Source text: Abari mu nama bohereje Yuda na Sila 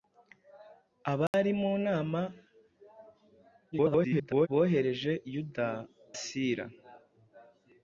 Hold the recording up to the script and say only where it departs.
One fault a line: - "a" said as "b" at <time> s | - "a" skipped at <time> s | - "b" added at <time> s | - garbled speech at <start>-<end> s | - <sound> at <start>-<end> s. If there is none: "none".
- dropout at 1.3-1.3 s
- garbled speech at 3.7-4.5 s
- "na" skipped at 5.7 s